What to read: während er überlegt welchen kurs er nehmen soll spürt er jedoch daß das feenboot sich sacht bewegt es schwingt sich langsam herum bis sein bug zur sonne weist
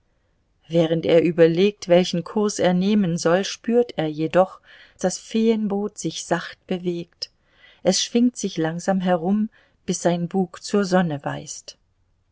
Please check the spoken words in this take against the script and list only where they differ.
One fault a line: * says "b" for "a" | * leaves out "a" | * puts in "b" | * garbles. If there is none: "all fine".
* leaves out "daß"